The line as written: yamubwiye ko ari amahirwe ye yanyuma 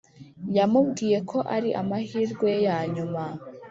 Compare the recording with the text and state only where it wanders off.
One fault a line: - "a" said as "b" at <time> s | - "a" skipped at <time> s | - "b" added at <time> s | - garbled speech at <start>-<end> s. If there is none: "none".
none